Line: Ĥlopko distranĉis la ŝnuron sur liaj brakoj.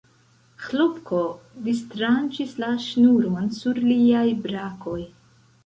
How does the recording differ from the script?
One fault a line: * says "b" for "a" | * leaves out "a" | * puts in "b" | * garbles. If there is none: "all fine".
all fine